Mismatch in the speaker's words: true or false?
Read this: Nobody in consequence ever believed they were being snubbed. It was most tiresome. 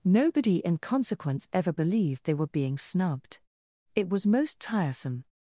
false